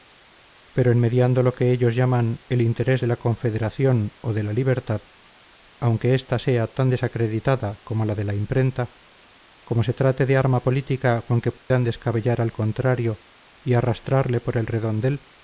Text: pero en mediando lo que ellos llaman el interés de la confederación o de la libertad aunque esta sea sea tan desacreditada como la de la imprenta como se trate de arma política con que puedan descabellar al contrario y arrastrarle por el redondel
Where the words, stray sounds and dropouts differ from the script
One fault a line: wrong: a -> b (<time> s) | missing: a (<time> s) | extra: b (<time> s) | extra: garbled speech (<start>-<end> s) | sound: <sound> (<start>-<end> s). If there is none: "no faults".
missing: sea (6.7 s)
sound: dropout (11.6-11.7 s)